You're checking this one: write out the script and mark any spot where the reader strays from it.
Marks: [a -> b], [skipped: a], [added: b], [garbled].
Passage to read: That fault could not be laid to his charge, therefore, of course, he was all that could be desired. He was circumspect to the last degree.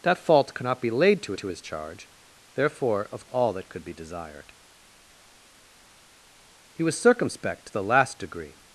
That fault could not be laid to [added: to] his charge, therefore, of [skipped: course, he was] all that could be desired. He was circumspect to the last degree.